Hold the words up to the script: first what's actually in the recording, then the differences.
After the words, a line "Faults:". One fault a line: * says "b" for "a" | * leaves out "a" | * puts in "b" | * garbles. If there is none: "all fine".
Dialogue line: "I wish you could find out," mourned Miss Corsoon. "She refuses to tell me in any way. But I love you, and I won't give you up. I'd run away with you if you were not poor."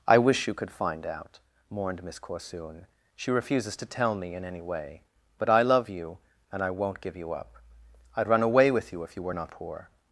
"I wish you could find out," mourned Miss Corsoon. "She refuses to tell me in any way. But I love you, and I won't give you up. I'd run away with you if you were not poor."
Faults:
all fine